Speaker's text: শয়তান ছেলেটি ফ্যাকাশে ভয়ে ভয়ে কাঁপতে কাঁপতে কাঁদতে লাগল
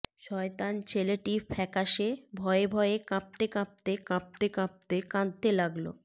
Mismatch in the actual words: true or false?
true